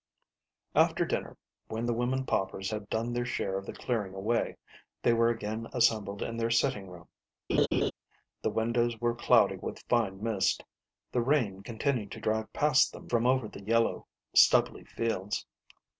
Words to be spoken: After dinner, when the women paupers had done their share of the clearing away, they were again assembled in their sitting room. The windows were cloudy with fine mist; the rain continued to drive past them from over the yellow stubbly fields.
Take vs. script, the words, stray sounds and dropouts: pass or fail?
fail